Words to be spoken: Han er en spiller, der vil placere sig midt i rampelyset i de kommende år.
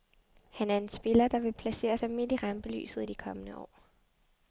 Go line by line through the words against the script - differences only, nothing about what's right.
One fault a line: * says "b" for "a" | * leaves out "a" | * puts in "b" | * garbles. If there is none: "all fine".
all fine